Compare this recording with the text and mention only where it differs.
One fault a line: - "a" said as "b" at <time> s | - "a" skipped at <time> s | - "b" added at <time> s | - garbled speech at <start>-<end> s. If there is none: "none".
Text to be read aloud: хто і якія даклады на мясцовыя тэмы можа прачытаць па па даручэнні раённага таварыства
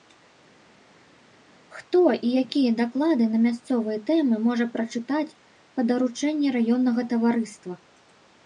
- "па" skipped at 5.9 s